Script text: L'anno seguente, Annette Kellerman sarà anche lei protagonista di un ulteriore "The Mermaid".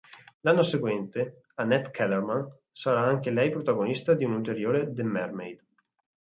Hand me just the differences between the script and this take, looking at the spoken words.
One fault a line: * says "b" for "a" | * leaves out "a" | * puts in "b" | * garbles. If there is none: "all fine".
all fine